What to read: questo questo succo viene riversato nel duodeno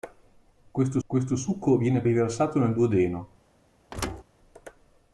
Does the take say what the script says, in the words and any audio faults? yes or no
no